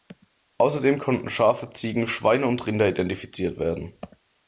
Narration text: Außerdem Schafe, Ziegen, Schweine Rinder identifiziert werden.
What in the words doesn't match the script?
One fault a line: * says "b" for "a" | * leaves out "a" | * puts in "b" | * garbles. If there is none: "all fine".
* puts in "konnten"
* puts in "und"